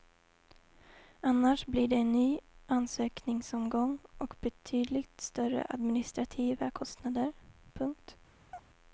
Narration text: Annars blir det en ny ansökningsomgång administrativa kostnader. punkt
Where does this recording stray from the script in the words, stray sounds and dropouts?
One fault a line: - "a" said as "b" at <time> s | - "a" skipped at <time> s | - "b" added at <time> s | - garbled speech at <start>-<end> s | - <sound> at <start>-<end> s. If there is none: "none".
- "och betydligt större" added at 4.2 s
- chirp at 8.5-8.7 s